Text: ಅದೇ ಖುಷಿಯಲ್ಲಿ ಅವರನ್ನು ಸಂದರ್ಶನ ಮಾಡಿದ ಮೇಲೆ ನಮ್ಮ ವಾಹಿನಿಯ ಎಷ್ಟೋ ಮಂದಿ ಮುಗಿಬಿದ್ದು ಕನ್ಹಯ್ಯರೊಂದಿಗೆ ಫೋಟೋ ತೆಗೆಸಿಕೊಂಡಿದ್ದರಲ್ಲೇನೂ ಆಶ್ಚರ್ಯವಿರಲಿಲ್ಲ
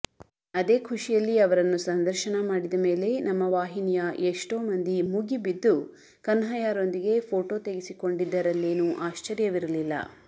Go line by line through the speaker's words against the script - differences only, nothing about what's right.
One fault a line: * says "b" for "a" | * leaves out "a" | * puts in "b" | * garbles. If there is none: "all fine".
all fine